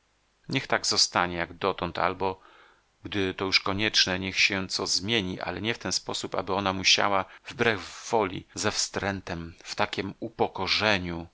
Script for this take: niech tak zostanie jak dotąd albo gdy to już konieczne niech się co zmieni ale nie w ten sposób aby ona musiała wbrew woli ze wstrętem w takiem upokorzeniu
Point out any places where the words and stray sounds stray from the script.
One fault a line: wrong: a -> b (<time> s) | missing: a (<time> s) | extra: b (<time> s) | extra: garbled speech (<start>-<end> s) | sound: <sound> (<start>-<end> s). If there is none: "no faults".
no faults